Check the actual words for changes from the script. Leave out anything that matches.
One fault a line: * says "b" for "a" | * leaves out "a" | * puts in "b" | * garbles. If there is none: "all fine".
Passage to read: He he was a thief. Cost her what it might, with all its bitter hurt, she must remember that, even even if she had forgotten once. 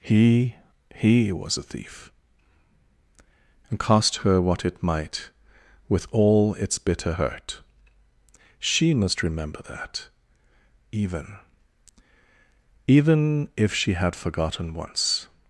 * puts in "and"